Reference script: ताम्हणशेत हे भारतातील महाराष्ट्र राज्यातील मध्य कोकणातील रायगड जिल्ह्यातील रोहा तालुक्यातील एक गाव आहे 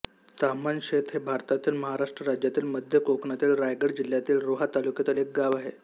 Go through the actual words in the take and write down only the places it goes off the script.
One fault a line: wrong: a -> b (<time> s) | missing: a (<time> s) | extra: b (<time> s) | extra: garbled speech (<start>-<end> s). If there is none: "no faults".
no faults